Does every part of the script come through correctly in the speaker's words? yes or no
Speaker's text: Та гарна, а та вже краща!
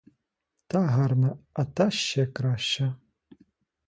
no